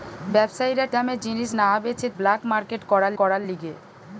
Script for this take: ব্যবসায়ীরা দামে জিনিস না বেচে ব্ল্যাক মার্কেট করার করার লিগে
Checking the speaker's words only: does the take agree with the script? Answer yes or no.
yes